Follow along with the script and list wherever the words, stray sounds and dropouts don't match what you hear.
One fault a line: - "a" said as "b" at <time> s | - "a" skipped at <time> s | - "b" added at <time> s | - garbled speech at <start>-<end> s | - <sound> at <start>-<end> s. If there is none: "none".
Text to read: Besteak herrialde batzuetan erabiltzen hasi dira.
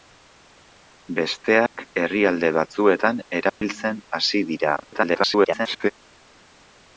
- dropout at 1.7-1.8 s
- dropout at 3.5-3.6 s
- garbled speech at 4.8-5.9 s